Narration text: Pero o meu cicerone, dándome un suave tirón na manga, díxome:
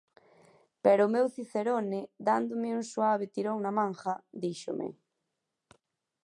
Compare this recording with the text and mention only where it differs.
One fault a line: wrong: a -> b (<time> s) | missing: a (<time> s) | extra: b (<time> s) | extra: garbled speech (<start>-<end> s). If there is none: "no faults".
no faults